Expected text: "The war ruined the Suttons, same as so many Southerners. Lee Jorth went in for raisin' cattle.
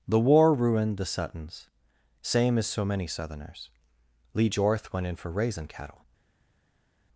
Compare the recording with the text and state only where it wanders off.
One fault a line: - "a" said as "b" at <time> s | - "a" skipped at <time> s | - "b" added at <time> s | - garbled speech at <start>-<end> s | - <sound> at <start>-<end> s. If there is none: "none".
none